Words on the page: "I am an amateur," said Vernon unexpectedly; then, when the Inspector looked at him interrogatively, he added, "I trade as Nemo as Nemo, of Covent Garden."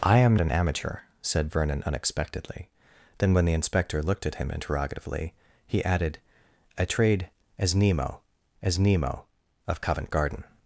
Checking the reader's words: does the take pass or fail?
pass